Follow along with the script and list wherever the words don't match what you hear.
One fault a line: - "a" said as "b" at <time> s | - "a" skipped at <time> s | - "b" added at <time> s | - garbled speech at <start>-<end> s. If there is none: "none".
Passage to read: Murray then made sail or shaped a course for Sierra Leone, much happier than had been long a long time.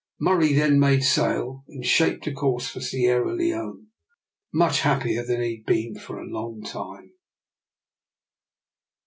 - "or" said as "and" at 1.7 s
- "he" added at 5.4 s
- "long" said as "for" at 6.0 s